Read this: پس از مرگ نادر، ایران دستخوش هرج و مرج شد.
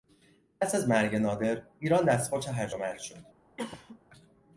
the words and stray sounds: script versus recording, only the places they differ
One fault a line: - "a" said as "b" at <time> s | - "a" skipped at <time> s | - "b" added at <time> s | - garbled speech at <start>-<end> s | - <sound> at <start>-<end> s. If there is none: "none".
- cough at 3.6-4.0 s